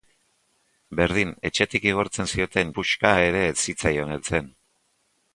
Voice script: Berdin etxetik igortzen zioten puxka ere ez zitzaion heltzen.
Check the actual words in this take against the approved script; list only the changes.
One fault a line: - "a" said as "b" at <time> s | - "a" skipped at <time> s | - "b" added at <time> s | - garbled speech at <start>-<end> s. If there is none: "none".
none